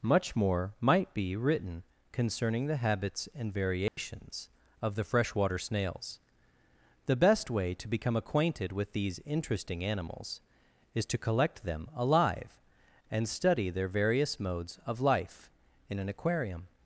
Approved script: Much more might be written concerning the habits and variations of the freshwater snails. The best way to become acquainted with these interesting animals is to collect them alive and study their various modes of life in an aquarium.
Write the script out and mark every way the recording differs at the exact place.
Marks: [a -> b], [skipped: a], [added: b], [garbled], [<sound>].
Much more might be written concerning the habits and variations [dropout] of the freshwater snails. The best way to become acquainted with these interesting animals is to collect them alive and study their various modes of life in an aquarium.